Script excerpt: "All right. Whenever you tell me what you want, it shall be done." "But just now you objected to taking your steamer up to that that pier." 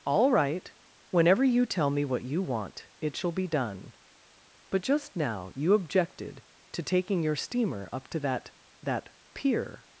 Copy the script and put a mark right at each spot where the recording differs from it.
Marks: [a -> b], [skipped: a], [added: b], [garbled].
"All right. Whenever you tell me what you want, it shall be done." "But just now you objected to taking your steamer up to that that pier."